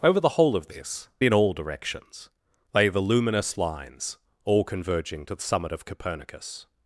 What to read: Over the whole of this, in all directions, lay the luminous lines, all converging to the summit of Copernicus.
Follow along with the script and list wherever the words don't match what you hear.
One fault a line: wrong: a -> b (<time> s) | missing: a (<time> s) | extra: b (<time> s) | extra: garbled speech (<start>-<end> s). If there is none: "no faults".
no faults